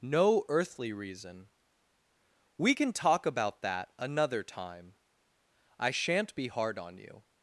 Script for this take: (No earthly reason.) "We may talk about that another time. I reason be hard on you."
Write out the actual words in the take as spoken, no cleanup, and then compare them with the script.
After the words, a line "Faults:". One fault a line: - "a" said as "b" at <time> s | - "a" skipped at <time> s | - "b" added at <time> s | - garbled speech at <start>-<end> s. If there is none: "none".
(No earthly reason.) "We can talk about that another time. I shan't be hard on you."
Faults:
- "may" said as "can" at 2.7 s
- "reason" said as "shan't" at 5.9 s